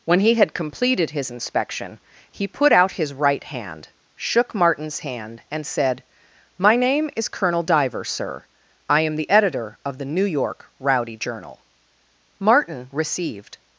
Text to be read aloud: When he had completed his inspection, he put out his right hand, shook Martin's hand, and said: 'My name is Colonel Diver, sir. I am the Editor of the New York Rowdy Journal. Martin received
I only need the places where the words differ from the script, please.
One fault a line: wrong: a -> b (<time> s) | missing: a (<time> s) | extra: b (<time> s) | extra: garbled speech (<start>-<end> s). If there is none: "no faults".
no faults